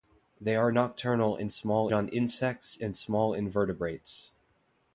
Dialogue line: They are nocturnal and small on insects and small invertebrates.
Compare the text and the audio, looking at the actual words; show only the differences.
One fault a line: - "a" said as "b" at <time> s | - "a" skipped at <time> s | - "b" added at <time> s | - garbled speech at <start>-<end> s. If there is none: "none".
none